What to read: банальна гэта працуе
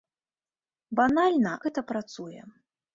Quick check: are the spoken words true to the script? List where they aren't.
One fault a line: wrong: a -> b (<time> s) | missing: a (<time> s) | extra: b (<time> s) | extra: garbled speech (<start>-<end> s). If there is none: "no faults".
no faults